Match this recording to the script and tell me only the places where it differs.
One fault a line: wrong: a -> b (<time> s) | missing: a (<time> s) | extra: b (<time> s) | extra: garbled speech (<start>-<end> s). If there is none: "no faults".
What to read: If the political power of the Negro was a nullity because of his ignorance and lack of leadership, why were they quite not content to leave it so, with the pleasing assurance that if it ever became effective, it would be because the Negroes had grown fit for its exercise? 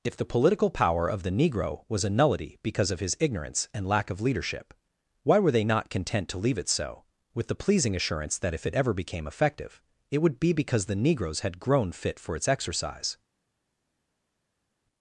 missing: quite (5.6 s)